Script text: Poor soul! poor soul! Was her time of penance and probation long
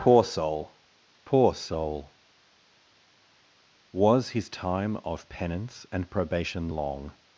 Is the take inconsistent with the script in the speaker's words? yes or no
yes